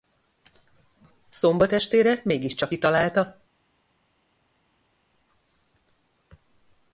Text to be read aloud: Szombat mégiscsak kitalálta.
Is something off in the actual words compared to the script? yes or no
yes